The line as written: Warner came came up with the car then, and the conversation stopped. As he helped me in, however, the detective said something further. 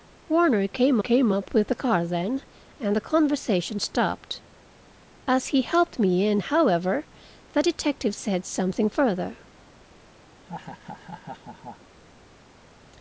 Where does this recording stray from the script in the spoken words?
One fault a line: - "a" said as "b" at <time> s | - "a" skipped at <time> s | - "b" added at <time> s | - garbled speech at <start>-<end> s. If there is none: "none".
none